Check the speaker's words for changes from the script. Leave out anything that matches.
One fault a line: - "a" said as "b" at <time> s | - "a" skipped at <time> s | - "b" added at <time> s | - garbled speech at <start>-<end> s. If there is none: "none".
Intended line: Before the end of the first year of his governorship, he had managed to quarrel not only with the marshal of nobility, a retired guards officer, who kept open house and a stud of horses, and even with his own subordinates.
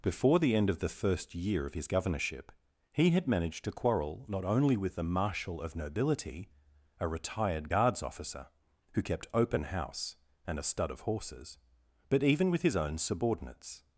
- "and" said as "but" at 12.1 s